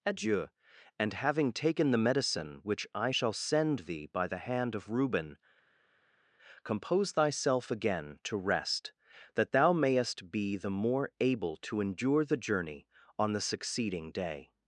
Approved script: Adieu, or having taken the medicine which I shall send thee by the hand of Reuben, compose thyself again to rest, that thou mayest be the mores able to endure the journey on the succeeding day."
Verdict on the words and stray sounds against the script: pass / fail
fail